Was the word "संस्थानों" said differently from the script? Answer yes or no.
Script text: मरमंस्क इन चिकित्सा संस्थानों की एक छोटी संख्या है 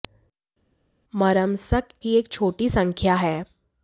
yes